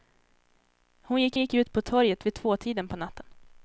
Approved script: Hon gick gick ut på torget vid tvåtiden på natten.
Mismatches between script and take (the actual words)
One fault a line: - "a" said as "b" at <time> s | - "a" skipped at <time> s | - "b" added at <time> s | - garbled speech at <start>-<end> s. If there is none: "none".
none